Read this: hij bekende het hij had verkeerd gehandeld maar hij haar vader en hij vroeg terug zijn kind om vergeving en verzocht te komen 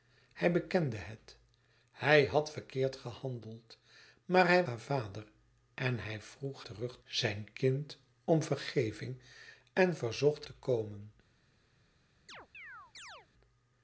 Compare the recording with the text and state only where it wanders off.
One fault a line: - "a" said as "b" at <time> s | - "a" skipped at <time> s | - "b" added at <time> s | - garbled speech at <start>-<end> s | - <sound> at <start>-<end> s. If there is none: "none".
- chirp at 12.3-13.3 s